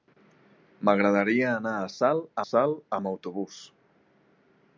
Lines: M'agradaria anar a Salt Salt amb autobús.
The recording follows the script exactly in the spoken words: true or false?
true